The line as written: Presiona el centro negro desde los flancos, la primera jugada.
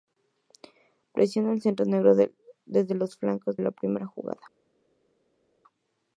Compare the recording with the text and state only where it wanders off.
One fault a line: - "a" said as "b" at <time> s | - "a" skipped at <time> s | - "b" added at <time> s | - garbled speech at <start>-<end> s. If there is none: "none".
none